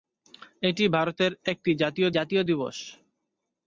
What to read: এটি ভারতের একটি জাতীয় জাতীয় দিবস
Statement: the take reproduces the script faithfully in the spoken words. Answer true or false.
true